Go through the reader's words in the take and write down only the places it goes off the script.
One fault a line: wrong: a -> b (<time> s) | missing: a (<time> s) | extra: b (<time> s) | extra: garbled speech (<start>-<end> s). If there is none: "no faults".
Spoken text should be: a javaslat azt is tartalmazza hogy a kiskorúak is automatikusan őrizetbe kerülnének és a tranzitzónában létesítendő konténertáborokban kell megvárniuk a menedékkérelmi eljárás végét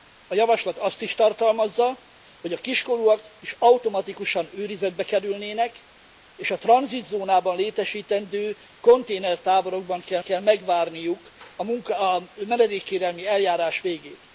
extra: kell (10.2 s)